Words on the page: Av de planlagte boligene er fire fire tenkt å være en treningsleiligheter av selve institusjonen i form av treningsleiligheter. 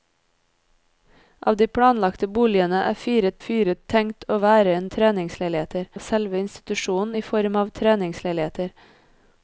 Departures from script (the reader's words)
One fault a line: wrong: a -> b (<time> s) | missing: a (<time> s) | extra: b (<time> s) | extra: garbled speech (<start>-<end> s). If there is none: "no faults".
no faults